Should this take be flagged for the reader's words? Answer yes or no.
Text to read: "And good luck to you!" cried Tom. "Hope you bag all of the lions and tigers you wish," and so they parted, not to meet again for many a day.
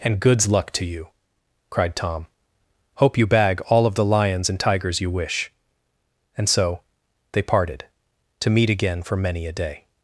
yes